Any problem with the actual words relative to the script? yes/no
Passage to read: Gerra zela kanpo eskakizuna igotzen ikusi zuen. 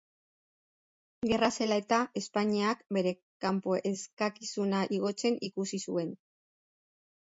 yes